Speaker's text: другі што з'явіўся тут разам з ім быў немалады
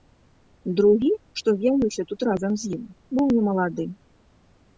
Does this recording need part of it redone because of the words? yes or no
no